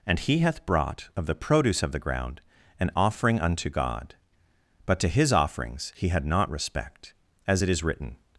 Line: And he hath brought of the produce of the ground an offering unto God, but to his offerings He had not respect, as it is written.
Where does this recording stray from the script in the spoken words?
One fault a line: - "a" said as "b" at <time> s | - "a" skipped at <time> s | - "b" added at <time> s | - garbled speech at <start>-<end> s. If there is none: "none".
none